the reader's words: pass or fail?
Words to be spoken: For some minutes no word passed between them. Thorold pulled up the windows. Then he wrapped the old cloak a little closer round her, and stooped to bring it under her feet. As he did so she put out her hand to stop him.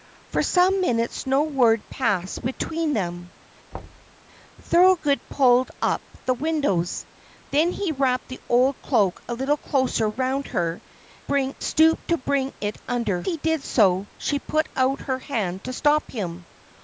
fail